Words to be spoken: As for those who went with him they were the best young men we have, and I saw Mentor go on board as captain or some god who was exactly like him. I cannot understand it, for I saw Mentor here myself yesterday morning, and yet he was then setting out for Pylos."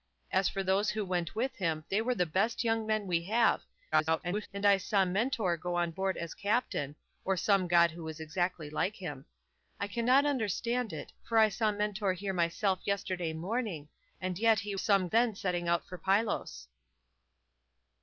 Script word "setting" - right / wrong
right